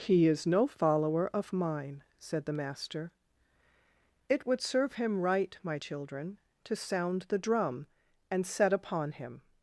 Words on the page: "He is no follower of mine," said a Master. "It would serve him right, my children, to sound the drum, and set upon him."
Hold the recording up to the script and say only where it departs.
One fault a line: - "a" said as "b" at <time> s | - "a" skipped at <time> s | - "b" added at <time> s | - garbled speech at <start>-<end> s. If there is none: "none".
- "a" said as "the" at 2.5 s